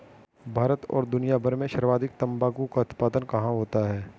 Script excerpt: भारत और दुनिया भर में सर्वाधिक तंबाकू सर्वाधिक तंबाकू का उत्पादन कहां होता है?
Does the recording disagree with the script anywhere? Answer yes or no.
yes